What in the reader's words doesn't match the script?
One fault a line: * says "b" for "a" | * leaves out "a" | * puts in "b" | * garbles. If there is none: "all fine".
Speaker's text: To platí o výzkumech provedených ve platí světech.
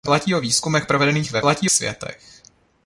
all fine